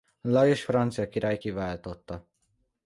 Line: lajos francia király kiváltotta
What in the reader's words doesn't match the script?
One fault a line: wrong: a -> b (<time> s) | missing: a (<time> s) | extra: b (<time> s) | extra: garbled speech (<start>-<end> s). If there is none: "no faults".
no faults